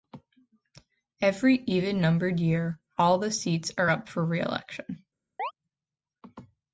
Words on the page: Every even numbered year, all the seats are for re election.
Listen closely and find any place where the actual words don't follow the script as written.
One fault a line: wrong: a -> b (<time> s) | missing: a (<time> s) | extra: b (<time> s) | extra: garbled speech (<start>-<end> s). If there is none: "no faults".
extra: up (3.9 s)